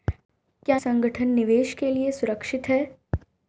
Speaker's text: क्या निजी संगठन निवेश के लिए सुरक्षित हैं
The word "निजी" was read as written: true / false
false